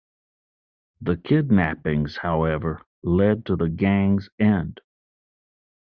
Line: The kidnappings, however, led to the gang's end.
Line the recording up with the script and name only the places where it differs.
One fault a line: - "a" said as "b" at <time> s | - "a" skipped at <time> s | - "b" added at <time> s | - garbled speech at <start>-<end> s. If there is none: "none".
none